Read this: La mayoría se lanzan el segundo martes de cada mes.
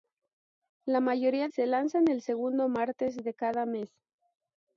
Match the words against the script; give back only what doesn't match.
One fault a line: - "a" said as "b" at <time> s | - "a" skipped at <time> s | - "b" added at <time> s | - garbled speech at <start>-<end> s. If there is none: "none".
none